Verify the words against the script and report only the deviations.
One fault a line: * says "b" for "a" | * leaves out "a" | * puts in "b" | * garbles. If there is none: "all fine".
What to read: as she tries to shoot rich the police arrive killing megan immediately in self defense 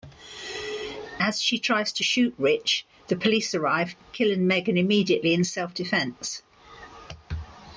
all fine